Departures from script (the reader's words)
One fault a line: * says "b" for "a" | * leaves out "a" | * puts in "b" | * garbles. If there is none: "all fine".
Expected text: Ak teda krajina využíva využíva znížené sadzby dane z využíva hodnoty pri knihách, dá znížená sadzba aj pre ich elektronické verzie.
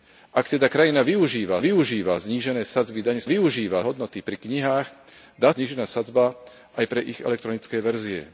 all fine